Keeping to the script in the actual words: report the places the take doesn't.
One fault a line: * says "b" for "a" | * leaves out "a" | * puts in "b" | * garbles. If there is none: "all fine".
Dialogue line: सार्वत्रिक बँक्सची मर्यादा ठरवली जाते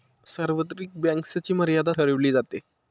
all fine